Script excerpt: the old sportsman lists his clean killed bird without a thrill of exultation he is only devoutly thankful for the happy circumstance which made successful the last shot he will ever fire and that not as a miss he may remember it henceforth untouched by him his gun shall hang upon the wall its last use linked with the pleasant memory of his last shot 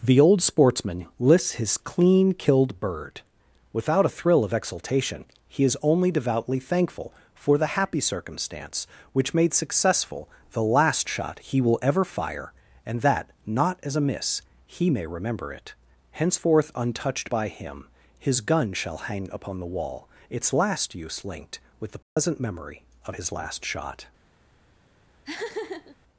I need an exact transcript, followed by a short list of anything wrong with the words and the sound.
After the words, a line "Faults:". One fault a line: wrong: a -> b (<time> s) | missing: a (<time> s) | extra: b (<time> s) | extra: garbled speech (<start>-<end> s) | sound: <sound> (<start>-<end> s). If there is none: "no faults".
the old sportsman lists his clean killed bird without a thrill of exultation he is only devoutly thankful for the happy circumstance which made successful the last shot he will ever fire and that not as a miss he may remember it henceforth untouched by him his gun shall hang upon the wall its last use linked with the pleasant memory of his last shot
Faults:
sound: dropout (22.0-22.2 s)
sound: laugh (25.2-26.0 s)